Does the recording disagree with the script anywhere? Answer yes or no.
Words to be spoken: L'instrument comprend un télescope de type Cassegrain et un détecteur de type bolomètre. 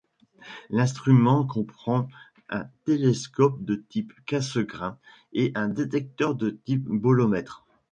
no